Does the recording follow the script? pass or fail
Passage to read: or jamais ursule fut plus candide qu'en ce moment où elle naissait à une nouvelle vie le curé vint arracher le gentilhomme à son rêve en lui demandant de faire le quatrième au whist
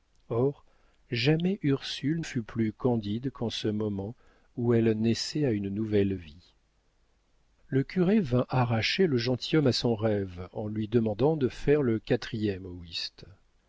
pass